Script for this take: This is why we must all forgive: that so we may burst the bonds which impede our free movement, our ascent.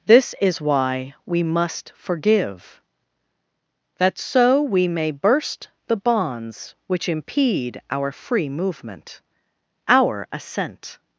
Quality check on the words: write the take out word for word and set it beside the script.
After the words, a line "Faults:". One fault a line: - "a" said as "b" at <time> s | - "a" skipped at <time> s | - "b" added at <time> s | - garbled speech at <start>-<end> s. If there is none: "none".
This is why we must forgive: that so we may burst the bonds which impede our free movement, our ascent.
Faults:
- "all" skipped at 1.9 s